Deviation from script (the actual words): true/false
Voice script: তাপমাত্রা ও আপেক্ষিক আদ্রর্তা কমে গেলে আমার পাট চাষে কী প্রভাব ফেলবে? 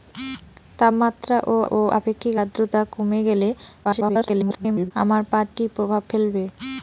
true